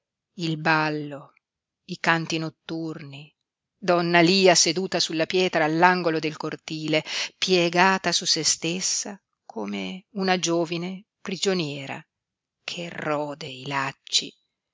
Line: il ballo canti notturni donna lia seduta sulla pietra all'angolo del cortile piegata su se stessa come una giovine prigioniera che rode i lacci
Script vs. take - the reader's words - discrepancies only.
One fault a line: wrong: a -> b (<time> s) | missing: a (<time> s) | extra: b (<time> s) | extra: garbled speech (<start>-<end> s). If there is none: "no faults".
extra: i (1.9 s)